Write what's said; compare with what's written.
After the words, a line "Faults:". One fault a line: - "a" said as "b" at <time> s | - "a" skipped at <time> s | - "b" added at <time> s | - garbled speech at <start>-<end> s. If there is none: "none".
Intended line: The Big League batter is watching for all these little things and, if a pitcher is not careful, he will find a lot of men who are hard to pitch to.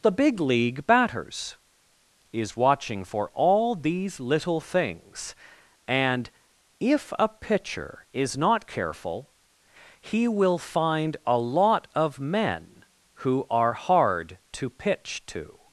The Big League batters is watching for all these little things and, if a pitcher is not careful, he will find a lot of men who are hard to pitch to.
Faults:
- "batter" said as "batters" at 0.9 s